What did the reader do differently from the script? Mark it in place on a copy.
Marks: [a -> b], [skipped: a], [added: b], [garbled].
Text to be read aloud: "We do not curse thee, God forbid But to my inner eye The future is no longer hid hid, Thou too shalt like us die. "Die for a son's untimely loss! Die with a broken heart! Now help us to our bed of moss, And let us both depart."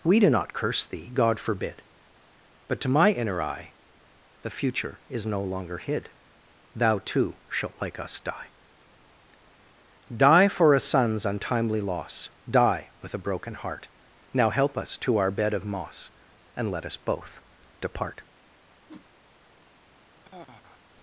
"We do not curse thee, God forbid But to my inner eye The future is no longer hid [skipped: hid,] Thou too shalt like us die. "Die for a son's untimely loss! Die with a broken heart! Now help us to our bed of moss, And let us both depart."